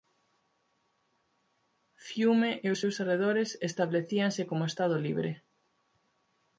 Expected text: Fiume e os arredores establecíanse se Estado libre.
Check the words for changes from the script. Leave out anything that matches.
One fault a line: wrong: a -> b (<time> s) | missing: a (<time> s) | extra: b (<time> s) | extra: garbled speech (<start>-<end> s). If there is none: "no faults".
extra: seus (2.8 s)
wrong: se -> como (4.5 s)